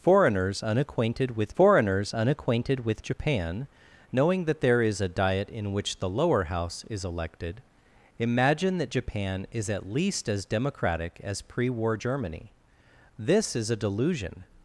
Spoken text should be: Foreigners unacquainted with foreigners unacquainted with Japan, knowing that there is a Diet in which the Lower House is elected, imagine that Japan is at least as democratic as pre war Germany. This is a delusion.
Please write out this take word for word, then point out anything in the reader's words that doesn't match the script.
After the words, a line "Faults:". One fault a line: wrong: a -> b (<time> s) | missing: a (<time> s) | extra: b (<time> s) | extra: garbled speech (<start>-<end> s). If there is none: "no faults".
Foreigners unacquainted with foreigners unacquainted with Japan, knowing that there is a Diet in which the Lower House is elected, imagine that Japan is at least as democratic as pre war Germany. This is a delusion.
Faults:
no faults